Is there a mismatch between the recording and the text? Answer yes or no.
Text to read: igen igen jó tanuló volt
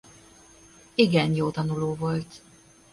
yes